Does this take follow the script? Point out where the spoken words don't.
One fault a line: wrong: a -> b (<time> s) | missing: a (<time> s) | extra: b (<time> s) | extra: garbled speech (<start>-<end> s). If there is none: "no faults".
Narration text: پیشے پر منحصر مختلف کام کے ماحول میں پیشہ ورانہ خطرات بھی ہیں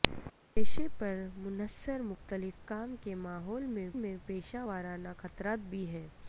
extra: میں (3.9 s)